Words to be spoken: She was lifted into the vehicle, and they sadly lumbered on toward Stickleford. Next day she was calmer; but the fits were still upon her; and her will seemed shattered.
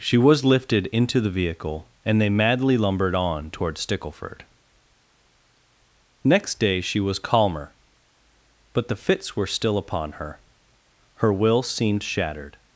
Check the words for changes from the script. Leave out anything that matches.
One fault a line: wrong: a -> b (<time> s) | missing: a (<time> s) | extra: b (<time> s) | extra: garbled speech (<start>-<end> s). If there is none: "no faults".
wrong: sadly -> madly (2.3 s)
missing: and (10.4 s)